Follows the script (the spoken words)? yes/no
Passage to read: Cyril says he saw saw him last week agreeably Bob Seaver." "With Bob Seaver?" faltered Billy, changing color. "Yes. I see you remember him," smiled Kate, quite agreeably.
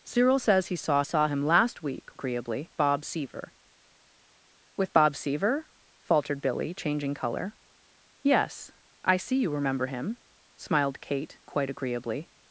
yes